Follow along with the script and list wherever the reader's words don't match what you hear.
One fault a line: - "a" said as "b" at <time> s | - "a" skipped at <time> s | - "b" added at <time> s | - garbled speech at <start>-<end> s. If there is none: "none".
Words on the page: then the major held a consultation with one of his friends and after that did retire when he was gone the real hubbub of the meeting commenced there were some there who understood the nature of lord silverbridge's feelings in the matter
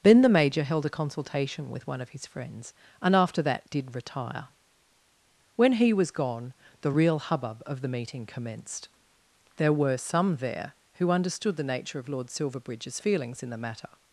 none